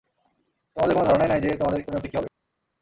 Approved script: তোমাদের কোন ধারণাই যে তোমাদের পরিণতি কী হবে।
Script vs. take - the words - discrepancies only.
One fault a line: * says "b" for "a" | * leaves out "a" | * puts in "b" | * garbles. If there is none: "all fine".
* puts in "নাই"